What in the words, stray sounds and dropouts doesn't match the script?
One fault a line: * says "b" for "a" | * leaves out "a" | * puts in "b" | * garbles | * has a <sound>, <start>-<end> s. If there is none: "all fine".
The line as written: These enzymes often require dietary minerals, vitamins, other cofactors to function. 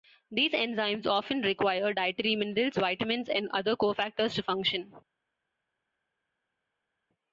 * puts in "and"